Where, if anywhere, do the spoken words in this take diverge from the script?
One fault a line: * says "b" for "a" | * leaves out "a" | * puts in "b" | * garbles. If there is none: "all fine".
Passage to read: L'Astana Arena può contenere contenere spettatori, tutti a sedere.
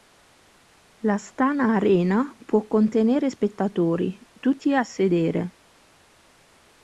* leaves out "contenere"